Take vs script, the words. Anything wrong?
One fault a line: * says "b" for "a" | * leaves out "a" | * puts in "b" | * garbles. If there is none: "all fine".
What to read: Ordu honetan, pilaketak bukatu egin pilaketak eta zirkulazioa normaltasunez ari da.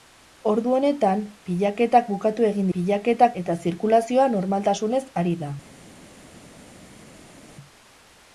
all fine